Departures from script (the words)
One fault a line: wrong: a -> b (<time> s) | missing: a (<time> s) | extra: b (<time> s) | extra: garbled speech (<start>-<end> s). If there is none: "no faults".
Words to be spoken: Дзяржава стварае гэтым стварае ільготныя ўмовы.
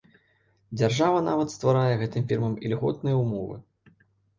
extra: нават (1.3 s)
wrong: стварае -> фірмам (2.3 s)